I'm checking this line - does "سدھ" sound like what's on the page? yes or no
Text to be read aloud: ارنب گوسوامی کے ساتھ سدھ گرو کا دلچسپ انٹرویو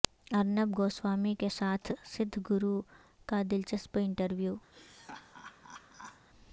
yes